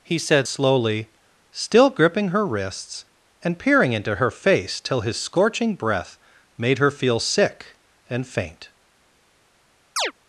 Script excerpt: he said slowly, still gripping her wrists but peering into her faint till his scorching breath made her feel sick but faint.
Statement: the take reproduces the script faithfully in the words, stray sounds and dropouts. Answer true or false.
false